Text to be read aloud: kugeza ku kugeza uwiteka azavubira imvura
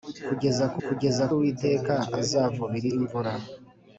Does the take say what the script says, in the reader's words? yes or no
yes